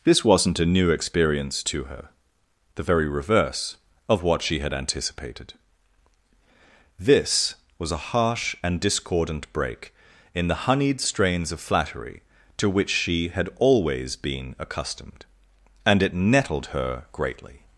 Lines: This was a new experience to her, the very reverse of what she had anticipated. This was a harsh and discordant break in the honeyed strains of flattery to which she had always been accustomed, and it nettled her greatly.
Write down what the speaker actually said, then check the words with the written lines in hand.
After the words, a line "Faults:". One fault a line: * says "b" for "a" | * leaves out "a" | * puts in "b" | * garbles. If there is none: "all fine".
This wasn't a new experience to her, the very reverse of what she had anticipated. This was a harsh and discordant break in the honeyed strains of flattery to which she had always been accustomed, and it nettled her greatly.
Faults:
* says "wasn't" for "was"